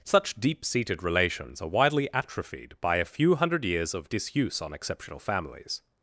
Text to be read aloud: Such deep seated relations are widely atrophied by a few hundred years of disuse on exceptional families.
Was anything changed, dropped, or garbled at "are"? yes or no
no